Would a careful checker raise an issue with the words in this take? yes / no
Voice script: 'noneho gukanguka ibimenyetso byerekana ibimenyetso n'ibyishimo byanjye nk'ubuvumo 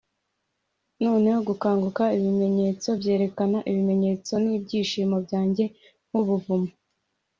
no